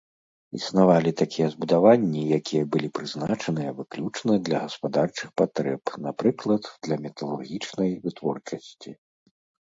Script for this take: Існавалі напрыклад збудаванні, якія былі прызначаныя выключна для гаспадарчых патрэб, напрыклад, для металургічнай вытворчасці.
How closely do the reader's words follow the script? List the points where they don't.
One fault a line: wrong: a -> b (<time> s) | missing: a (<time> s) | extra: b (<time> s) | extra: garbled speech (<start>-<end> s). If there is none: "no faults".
wrong: напрыклад -> такія (1.2 s)